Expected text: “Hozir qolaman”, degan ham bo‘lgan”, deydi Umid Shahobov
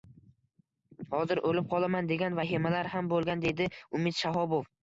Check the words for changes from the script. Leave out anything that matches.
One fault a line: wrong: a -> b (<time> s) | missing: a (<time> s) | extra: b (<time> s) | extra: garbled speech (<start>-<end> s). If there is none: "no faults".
extra: o‘lib (1.5 s)
extra: vahimalar (2.4 s)